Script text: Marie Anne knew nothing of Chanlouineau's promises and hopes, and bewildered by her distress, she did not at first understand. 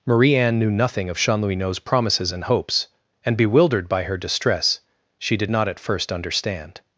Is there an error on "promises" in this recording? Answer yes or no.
no